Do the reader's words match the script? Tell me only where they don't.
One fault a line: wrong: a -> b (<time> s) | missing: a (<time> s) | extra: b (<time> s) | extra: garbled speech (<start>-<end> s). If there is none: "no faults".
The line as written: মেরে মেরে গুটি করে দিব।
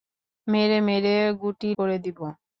no faults